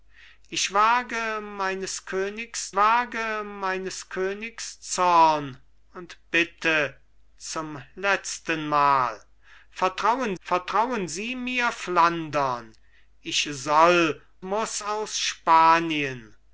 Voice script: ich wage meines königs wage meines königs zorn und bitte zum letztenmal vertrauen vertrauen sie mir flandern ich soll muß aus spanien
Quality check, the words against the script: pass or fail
pass